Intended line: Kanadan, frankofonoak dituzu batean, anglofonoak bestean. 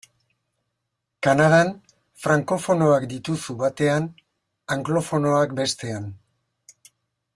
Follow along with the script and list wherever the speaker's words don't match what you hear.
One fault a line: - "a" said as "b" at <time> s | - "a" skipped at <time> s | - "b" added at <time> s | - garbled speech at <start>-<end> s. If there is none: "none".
none